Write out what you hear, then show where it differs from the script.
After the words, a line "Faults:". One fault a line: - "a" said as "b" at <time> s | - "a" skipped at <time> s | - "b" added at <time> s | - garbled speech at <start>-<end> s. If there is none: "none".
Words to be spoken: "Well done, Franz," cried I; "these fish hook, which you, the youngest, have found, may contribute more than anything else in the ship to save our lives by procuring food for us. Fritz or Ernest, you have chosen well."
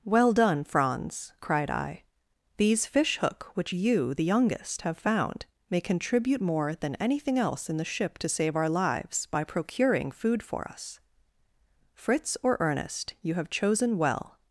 "Well done, Franz," cried I; "these fish hook, which you, the youngest, have found, may contribute more than anything else in the ship to save our lives by procuring food for us. Fritz or Ernest, you have chosen well."
Faults:
none